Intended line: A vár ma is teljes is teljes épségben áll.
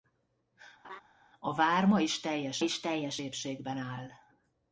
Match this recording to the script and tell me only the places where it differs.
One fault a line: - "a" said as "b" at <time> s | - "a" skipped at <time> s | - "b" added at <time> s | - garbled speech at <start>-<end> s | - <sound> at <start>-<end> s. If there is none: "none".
- laugh at 0.8-1.0 s